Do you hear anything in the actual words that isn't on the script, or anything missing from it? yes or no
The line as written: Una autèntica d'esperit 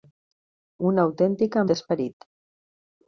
no